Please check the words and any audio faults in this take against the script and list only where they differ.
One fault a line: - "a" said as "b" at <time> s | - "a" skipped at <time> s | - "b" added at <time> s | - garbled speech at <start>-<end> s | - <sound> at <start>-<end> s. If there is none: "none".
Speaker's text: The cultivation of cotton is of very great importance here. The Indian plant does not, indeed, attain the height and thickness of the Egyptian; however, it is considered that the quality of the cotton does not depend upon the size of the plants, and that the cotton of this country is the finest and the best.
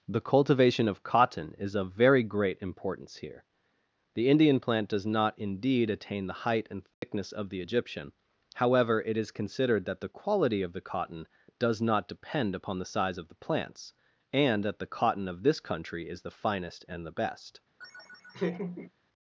- dropout at 6.9-7.0 s
- laugh at 17.8-18.9 s